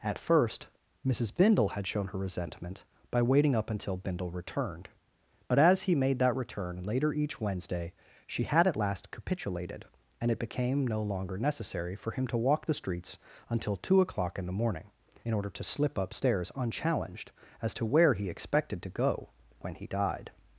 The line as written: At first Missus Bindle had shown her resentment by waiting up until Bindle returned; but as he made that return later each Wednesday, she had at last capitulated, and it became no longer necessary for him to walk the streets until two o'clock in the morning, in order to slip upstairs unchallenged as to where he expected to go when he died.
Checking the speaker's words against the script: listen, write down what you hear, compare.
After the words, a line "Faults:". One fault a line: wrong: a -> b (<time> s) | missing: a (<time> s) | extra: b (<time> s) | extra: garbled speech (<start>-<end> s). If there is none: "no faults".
At first Missus Bindle had shown her resentment by waiting up until Bindle returned; but as he made that return later each Wednesday, she had at last capitulated, and it became no longer necessary for him to walk the streets until two o'clock in the morning, in order to slip upstairs unchallenged as to where he expected to go when he died.
Faults:
no faults